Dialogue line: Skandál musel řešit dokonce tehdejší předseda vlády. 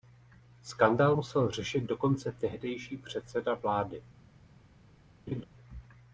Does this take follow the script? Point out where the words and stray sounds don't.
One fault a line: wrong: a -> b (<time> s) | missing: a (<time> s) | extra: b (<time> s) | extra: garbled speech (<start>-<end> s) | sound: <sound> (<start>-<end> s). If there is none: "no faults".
sound: laugh (5.3-5.4 s)